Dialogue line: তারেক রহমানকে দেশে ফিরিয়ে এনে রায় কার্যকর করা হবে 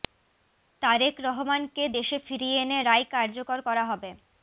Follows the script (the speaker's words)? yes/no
yes